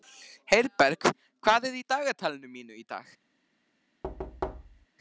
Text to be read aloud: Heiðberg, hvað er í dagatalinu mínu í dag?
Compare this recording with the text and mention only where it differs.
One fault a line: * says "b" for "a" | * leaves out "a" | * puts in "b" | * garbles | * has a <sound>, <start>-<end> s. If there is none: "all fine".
* has a thud, 4.0-4.9 s